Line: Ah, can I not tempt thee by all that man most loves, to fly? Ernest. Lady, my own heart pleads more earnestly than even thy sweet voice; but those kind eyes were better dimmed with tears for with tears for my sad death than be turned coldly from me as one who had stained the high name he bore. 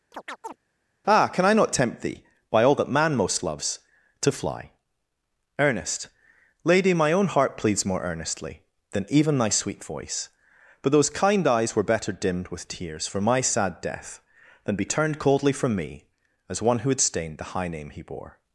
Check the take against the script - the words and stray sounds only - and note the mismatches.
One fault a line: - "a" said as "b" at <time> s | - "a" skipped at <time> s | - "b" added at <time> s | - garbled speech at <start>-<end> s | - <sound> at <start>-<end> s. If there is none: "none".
- chirp at 0.1-0.6 s
- "with tears for" skipped at 13.2 s